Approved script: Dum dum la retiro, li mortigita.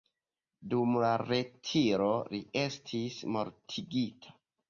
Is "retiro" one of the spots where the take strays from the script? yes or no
no